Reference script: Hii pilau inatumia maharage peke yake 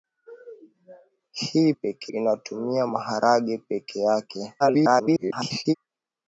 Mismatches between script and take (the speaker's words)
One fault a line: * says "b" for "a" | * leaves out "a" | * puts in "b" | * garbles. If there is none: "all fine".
* says "peke" for "pilau"
* garbles